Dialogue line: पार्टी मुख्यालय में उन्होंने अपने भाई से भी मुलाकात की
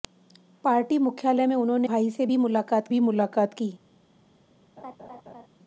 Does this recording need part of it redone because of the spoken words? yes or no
yes